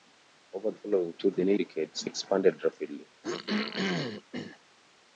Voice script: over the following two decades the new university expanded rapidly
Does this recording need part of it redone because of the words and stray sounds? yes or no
yes